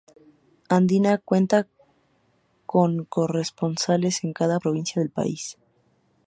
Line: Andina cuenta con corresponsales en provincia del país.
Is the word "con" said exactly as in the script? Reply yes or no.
yes